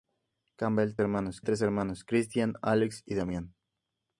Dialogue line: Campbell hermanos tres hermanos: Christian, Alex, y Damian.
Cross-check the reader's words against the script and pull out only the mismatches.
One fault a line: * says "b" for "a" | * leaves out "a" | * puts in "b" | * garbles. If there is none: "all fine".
all fine